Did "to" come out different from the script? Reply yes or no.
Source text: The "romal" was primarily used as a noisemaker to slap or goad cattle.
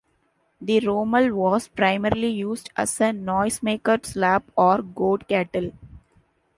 yes